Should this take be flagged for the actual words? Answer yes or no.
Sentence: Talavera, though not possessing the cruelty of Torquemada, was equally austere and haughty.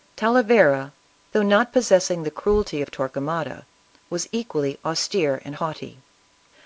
no